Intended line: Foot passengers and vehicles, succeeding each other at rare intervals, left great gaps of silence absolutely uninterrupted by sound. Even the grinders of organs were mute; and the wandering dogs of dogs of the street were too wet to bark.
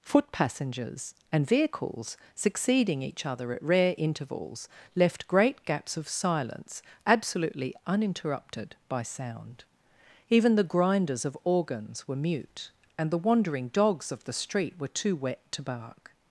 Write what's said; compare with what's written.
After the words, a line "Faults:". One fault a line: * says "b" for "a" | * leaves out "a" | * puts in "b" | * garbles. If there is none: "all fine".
Foot passengers and vehicles, succeeding each other at rare intervals, left great gaps of silence absolutely uninterrupted by sound. Even the grinders of organs were mute; and the wandering dogs of the street were too wet to bark.
Faults:
* leaves out "dogs of"